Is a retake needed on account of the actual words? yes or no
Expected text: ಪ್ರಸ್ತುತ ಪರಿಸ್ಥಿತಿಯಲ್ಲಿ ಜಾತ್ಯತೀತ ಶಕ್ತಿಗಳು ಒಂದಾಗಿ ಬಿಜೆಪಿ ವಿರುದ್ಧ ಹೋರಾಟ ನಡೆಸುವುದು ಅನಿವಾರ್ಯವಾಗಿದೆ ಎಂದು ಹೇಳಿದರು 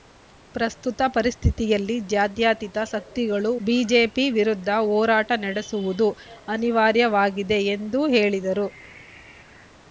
yes